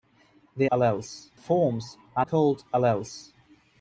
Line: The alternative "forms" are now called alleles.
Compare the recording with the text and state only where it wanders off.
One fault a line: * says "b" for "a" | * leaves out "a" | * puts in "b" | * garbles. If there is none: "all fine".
* says "alleles" for "alternative"
* leaves out "now"